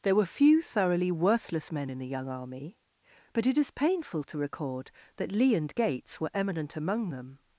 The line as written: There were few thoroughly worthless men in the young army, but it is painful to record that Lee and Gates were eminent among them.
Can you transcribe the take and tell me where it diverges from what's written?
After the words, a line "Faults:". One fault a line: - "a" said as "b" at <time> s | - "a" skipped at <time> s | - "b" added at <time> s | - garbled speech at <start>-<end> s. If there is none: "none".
There were few thoroughly worthless men in the young army, but it is painful to record that Lee and Gates were eminent among them.
Faults:
none